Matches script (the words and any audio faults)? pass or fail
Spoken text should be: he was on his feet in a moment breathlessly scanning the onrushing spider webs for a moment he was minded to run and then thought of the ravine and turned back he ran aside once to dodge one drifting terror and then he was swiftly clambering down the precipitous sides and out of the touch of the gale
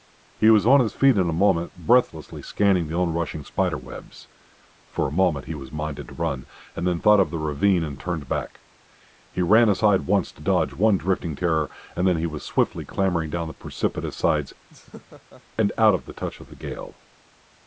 fail